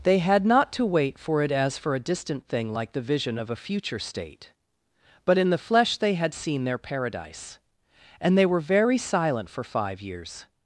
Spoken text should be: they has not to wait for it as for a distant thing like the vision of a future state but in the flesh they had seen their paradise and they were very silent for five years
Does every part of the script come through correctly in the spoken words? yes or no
no